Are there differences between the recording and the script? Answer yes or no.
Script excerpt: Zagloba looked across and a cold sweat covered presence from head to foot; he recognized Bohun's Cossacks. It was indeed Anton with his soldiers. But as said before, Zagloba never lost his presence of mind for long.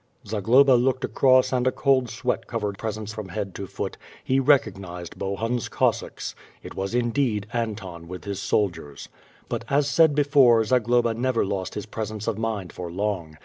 no